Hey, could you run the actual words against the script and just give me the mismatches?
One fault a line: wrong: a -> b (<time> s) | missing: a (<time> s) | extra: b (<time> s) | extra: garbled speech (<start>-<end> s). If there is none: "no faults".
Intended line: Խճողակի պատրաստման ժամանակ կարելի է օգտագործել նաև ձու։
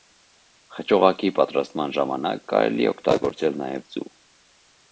no faults